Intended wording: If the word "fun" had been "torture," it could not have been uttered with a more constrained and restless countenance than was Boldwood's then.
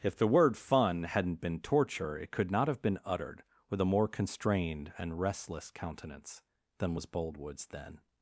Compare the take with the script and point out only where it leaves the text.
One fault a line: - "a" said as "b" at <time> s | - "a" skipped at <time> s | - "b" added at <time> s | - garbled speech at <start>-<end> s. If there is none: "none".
- "had" said as "hadn't" at 1.0 s